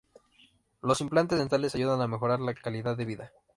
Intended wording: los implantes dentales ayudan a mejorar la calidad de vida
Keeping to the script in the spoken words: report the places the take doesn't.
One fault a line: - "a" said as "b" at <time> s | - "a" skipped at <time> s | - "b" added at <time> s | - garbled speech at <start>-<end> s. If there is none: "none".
none